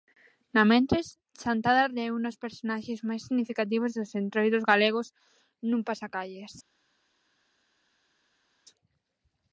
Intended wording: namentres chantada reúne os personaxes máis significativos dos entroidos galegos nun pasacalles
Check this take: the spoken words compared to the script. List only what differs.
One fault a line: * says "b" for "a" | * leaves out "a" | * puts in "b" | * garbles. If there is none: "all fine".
all fine